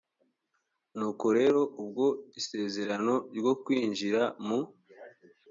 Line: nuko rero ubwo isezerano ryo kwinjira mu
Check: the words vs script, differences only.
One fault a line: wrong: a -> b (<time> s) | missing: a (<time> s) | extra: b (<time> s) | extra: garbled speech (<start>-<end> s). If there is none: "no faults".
no faults